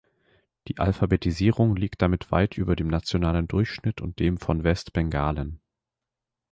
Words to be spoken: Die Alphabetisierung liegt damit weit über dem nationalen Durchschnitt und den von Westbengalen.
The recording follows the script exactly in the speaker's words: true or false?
false